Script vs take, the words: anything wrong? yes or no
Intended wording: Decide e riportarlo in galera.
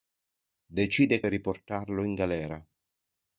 no